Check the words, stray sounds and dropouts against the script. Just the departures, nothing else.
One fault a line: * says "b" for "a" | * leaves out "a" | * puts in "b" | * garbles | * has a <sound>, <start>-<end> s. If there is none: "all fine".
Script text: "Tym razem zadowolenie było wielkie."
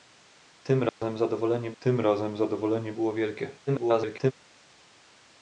* has a dropout, 0.9-1.0 s
* puts in "tym razem zadowolenie"
* garbles